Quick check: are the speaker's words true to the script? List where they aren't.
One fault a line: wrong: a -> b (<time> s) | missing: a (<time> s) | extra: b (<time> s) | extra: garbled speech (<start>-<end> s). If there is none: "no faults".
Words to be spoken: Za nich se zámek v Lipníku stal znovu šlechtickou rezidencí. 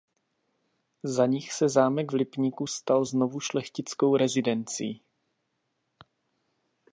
no faults